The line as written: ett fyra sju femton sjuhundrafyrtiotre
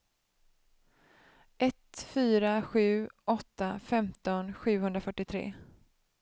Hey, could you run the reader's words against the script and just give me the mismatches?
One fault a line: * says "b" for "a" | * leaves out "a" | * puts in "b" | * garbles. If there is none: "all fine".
* puts in "åtta"